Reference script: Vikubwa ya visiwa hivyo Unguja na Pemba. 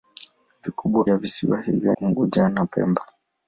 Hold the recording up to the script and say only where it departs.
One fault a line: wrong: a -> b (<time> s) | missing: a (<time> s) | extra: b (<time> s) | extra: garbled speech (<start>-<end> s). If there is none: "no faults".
no faults